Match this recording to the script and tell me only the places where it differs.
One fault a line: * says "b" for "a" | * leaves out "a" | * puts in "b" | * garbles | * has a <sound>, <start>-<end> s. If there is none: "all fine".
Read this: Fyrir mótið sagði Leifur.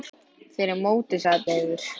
all fine